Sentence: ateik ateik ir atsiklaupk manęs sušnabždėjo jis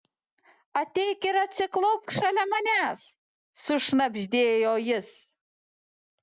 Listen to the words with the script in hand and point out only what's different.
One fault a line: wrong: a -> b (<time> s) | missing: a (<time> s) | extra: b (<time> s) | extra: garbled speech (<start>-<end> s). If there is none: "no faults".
missing: ateik (1.3 s)
extra: šalia (2.1 s)